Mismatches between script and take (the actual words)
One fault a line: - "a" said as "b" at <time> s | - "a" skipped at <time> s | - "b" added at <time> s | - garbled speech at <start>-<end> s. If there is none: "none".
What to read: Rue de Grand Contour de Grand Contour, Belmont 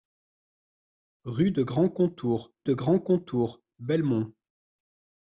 none